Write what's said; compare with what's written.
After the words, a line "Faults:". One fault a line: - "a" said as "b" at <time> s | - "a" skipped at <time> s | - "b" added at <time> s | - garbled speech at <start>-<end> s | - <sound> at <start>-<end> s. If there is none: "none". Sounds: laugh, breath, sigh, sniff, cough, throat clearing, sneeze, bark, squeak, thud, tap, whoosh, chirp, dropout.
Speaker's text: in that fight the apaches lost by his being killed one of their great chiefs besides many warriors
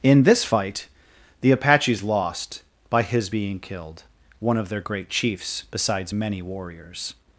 in this fight the apaches lost by his being killed one of their great chiefs besides many warriors
Faults:
- "that" said as "this" at 0.2 s